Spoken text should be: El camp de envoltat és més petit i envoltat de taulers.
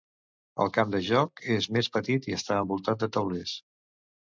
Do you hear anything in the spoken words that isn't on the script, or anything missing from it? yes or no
yes